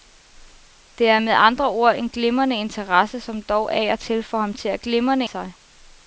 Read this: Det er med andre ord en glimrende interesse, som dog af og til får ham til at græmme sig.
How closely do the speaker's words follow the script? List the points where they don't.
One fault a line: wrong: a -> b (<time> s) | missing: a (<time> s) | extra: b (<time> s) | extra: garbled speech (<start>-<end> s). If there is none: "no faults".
wrong: græmme -> glimrende (4.8 s)